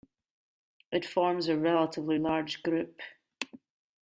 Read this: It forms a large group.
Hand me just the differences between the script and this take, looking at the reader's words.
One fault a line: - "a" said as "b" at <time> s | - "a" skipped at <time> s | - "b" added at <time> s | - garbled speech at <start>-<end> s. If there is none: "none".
- "relatively" added at 1.6 s